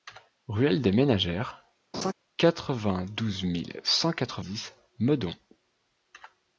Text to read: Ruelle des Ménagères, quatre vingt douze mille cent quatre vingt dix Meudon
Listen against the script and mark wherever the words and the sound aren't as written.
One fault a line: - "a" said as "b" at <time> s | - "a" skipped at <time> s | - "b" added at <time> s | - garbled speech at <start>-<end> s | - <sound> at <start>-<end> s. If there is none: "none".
- laugh at 1.9-2.1 s
- "vingt" skipped at 4.4 s